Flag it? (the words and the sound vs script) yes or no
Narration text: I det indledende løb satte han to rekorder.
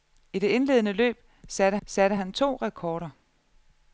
yes